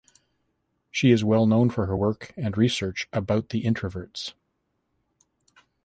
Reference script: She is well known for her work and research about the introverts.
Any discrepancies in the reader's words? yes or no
no